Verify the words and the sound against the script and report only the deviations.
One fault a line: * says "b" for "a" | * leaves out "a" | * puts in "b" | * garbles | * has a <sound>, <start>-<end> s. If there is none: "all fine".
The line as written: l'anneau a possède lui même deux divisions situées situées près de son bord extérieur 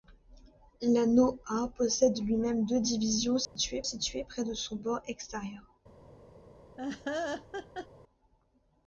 * has a dropout, 3.5-3.6 s
* has a laugh, 6.8-7.9 s